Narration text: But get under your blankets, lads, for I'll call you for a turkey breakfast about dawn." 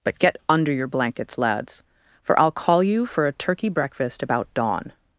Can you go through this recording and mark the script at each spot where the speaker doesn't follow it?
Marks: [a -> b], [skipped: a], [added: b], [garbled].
But get under your blankets, lads, for I'll call you for a turkey breakfast about dawn."